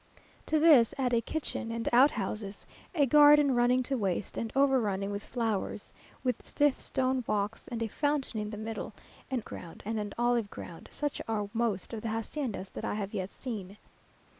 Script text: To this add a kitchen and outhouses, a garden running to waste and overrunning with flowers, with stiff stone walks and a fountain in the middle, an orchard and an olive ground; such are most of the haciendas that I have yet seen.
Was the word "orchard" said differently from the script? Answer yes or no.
yes